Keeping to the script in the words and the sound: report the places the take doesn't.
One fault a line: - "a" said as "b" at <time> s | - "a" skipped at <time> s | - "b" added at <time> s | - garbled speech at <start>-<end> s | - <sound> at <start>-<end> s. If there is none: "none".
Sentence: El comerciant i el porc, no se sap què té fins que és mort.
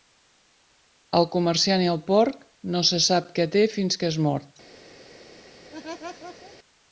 - laugh at 5.7-6.6 s